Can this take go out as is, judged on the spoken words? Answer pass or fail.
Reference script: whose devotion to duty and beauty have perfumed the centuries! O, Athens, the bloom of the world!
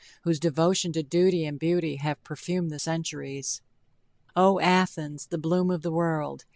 pass